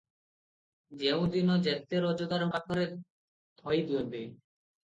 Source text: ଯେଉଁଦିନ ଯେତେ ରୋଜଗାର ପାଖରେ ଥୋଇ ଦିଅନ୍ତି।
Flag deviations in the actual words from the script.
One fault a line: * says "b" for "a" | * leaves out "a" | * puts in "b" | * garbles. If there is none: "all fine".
all fine